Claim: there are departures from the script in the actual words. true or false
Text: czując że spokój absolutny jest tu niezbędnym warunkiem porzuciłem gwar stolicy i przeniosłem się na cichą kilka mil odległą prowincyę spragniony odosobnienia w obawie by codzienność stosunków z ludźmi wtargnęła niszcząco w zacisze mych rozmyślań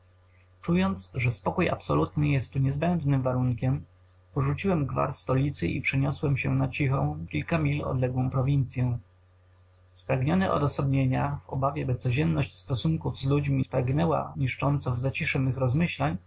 false